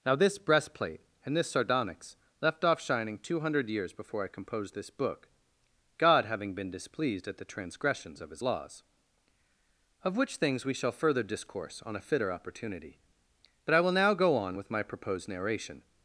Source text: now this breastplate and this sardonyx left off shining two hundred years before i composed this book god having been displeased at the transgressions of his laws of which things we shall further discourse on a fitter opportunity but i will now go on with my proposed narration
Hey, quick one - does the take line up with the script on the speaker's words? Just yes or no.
yes